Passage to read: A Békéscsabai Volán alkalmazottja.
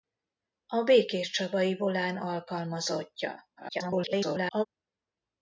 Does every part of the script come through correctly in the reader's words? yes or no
no